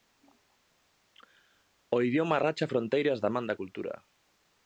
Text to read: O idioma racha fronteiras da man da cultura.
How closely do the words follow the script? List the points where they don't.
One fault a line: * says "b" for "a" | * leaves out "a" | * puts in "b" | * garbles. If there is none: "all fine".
all fine